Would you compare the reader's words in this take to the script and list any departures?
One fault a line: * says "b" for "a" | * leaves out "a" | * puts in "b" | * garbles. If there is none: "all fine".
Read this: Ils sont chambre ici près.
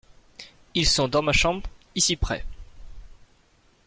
* puts in "dans ma"